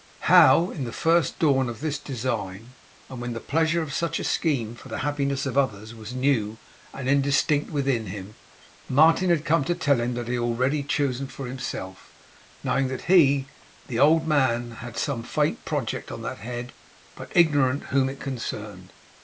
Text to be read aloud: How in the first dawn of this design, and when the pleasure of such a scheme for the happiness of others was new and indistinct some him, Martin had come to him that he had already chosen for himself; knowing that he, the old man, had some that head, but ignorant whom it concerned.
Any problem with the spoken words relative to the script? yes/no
yes